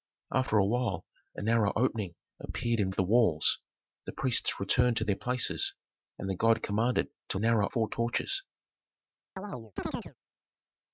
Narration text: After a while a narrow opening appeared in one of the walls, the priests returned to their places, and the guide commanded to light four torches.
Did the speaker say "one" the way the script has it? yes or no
no